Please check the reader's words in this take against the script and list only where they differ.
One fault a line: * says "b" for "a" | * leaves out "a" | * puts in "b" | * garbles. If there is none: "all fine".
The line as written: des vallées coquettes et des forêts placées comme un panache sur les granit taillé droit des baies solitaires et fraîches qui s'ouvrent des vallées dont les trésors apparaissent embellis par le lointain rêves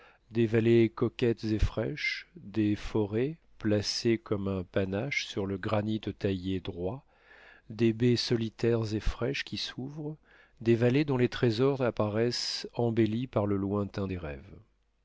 * puts in "fraîches"
* says "le" for "les"
* puts in "des"